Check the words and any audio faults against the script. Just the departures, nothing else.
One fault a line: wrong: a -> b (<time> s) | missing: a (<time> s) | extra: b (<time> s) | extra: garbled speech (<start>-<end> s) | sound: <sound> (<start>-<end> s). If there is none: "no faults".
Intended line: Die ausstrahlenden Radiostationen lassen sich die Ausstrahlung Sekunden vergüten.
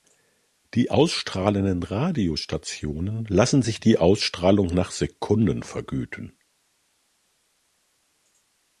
extra: nach (4.7 s)